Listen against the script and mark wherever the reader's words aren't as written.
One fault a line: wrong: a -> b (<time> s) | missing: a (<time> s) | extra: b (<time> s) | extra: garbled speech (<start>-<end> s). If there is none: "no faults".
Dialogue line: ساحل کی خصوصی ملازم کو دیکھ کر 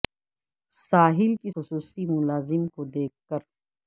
no faults